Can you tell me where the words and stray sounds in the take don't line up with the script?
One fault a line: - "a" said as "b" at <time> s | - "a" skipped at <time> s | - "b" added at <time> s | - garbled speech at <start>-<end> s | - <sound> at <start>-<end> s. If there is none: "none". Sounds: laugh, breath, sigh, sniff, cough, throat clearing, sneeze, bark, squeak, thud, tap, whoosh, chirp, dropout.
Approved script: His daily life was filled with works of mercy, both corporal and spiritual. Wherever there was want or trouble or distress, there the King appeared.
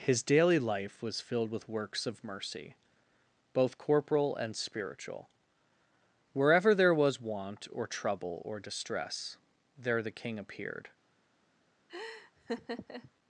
- laugh at 11.9-13.1 s